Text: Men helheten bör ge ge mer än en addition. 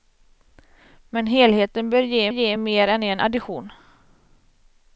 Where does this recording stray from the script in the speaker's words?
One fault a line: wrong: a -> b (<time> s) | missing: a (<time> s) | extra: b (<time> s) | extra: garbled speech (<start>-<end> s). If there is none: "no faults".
no faults